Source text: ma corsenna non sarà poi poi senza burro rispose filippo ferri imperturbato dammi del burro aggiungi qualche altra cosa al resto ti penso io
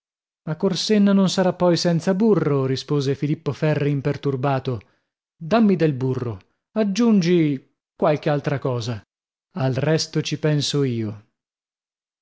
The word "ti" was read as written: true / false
false